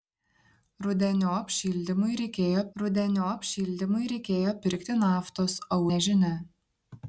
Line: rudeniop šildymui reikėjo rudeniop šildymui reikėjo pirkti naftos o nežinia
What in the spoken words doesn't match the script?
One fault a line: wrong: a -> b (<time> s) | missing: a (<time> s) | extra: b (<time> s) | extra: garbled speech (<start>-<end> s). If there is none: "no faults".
no faults